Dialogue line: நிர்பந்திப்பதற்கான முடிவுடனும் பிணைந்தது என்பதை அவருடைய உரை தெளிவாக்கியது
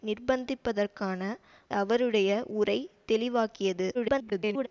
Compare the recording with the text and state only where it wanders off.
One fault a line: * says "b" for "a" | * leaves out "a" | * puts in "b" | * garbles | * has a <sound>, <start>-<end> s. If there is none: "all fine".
* leaves out "முடிவுடனும் பிணைந்தது என்பதை"
* garbles